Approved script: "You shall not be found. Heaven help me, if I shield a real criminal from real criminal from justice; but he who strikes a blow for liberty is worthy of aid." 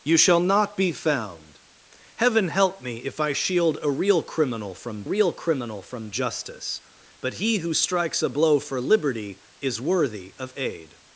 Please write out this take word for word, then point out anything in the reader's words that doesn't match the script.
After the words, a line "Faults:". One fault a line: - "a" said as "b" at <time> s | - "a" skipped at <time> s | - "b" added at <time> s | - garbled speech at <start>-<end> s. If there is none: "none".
"You shall not be found. Heaven help me, if I shield a real criminal from real criminal from justice; but he who strikes a blow for liberty is worthy of aid."
Faults:
none